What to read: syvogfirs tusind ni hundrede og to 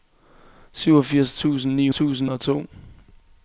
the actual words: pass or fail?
fail